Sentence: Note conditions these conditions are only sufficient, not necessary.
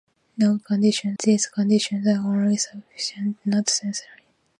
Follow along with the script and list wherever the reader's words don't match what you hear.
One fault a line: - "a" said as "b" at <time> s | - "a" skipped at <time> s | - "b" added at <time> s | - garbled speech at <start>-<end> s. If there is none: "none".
none